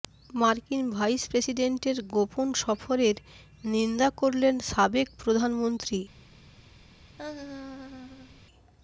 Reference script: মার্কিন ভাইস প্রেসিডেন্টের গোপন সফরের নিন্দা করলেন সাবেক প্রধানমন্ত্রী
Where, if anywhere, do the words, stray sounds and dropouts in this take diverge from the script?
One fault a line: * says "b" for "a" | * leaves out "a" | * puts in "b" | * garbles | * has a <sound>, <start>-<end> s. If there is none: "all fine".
* has a laugh, 7.2-8.4 s